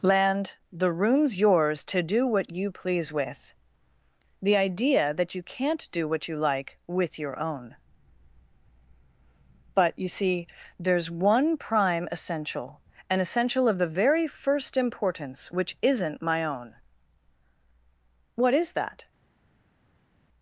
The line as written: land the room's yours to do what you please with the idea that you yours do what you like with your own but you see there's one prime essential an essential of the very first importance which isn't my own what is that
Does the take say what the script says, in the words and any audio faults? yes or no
no